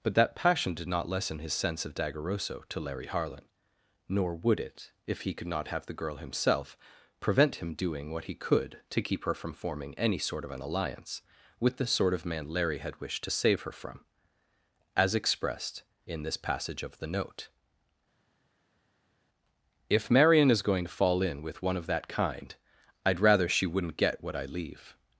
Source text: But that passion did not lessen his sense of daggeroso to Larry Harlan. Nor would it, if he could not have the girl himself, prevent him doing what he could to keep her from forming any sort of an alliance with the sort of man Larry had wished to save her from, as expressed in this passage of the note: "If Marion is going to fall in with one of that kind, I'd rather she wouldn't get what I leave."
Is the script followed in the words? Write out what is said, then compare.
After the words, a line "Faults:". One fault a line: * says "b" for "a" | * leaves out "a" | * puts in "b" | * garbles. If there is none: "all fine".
But that passion did not lessen his sense of daggeroso to Larry Harlan. Nor would it, if he could not have the girl himself, prevent him doing what he could to keep her from forming any sort of an alliance with the sort of man Larry had wished to save her from, as expressed in this passage of the note: "If Marion is going to fall in with one of that kind, I'd rather she wouldn't get what I leave."
Faults:
all fine